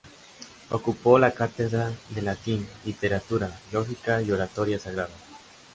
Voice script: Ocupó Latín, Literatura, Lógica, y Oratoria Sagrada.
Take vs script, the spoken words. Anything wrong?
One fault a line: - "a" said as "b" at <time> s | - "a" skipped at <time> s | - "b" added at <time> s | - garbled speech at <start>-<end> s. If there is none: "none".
- "la cátedra de" added at 1.2 s